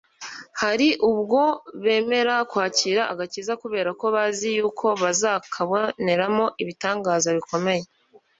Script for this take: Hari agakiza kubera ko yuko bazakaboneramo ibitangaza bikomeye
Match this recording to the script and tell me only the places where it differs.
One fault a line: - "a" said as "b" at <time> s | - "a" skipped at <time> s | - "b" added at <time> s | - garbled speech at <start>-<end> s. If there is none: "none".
- "ubwo bemera kwakira" added at 1.1 s
- "bazi" added at 4.1 s